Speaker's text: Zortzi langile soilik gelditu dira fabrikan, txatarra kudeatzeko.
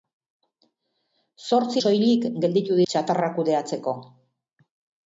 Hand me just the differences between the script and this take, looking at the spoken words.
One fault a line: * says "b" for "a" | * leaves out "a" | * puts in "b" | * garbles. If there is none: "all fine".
* leaves out "langile"
* leaves out "dira fabrikan"